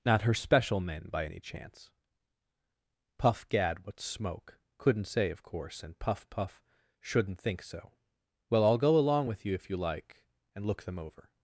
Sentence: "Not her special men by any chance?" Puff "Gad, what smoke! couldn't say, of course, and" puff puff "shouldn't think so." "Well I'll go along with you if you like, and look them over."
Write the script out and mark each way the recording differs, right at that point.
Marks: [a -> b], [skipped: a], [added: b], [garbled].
"Not her special men by any chance?" Puff "Gad, what smoke! couldn't say, of course, and" puff puff "shouldn't think so." "Well I'll go along with you if you like, and look them over."